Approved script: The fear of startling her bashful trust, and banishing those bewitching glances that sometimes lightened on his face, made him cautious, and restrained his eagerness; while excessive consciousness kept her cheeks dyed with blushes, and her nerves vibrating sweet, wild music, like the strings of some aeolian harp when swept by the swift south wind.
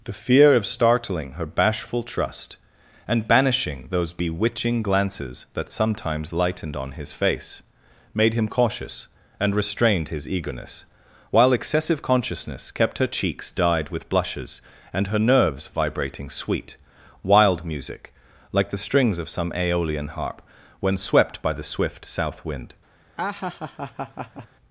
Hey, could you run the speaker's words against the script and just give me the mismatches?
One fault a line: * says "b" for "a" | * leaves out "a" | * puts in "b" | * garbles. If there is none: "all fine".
all fine